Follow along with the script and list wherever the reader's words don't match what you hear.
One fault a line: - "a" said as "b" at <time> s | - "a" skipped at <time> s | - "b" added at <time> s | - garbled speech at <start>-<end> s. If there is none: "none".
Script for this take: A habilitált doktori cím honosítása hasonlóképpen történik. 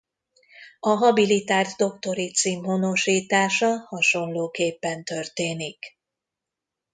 none